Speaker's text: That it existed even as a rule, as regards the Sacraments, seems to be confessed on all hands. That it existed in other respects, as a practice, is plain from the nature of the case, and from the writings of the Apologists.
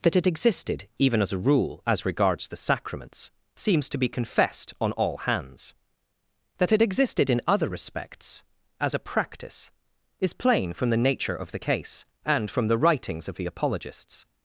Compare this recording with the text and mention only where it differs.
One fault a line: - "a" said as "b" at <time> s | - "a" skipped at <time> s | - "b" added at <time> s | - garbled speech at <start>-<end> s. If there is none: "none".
none